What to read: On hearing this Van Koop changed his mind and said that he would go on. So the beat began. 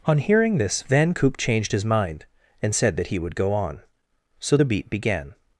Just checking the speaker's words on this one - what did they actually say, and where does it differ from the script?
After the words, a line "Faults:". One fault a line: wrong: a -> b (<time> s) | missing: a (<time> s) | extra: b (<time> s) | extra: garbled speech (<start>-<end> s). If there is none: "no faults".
On hearing this Van Koop changed his mind and said that he would go on. So the beat began.
Faults:
no faults